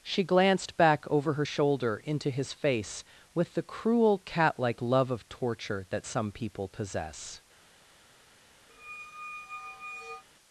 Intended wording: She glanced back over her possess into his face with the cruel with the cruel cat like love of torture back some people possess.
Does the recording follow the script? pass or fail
fail